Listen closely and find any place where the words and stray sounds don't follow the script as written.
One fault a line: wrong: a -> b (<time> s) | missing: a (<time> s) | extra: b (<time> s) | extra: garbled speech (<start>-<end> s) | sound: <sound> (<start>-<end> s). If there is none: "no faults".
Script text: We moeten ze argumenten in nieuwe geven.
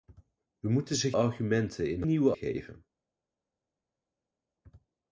no faults